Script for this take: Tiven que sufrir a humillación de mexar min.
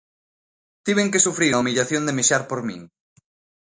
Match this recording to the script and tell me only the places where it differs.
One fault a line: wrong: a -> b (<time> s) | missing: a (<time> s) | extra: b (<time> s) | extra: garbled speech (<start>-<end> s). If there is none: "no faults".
extra: por (2.5 s)